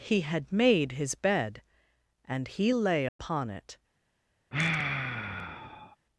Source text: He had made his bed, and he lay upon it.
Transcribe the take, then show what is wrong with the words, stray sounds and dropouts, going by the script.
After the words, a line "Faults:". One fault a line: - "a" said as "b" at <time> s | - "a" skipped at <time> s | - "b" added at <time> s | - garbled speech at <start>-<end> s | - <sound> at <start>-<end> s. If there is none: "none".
He had made his bed, and he lay upon it.
Faults:
- dropout at 3.1-3.2 s
- sigh at 4.5-6.0 s